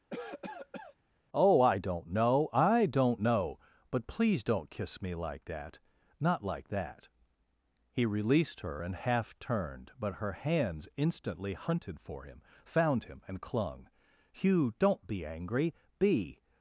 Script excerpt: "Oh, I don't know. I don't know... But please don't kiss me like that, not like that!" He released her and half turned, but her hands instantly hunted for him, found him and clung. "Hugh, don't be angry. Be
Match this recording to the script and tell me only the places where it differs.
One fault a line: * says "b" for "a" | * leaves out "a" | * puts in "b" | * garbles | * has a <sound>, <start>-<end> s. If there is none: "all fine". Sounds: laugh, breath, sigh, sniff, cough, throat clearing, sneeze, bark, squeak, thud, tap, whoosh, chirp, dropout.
* has a cough, 0.1-1.0 s